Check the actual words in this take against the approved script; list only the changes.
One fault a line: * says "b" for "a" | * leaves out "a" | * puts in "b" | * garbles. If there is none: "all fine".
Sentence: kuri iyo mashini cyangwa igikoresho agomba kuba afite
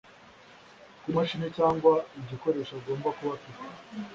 * leaves out "iyo"